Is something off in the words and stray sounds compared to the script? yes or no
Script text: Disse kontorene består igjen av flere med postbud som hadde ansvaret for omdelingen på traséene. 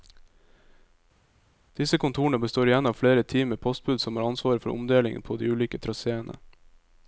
yes